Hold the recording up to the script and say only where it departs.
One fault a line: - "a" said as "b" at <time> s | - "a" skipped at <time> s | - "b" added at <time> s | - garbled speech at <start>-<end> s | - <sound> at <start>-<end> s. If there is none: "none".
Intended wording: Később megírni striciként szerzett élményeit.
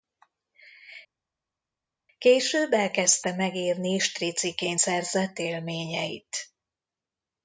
- "elkezdte" added at 2.7 s